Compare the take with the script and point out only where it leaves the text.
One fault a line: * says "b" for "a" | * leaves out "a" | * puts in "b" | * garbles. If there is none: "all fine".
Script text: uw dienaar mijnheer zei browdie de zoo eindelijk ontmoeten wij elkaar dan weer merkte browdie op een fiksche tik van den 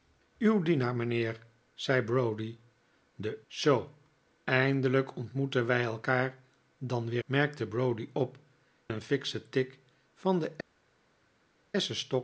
all fine